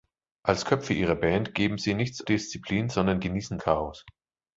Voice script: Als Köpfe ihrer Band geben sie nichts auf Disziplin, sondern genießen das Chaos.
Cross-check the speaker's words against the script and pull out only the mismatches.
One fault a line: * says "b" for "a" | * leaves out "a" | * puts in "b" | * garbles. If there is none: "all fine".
* leaves out "auf"
* leaves out "das"